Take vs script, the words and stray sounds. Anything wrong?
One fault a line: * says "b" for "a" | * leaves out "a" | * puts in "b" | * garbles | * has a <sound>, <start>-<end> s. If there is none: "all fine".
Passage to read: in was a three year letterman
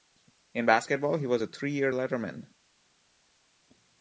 * puts in "basketball he"